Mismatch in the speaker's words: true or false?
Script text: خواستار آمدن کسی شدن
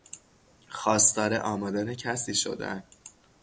false